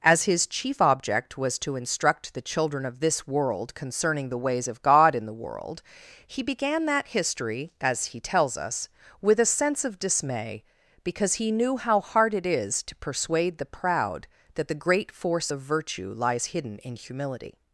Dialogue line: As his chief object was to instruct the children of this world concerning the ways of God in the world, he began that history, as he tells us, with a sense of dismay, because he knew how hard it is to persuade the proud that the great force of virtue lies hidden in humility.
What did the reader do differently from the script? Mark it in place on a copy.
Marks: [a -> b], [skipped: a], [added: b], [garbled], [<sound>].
As his chief object was to instruct the children of this world concerning the ways of God in the world, he began that history, as he tells us, with a sense of dismay, because he knew how hard it is to persuade the proud that the great force of virtue lies hidden in humility.